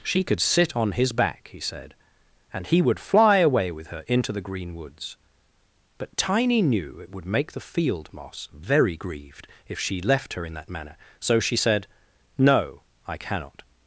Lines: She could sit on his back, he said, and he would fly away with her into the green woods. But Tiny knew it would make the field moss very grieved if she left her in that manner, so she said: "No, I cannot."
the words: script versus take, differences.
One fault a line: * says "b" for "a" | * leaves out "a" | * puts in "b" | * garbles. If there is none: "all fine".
all fine